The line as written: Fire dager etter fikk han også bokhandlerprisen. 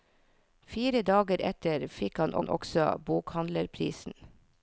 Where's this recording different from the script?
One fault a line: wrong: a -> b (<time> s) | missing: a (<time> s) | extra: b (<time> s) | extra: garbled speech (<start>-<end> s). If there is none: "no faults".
extra: han (2.4 s)